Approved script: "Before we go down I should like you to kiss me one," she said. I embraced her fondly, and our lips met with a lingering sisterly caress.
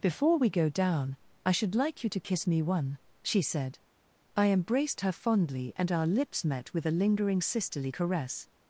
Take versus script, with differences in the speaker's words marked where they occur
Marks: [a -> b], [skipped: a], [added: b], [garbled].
"Before we go down I should like you to kiss me one," she said. I embraced her fondly, and our lips met with a lingering sisterly caress.